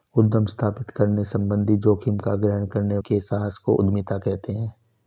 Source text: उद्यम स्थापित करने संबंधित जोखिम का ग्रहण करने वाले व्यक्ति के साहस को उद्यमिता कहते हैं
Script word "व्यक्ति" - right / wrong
wrong